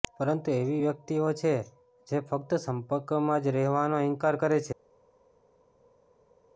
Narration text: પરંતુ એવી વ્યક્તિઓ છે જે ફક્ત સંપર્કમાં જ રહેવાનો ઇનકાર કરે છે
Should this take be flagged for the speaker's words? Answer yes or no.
no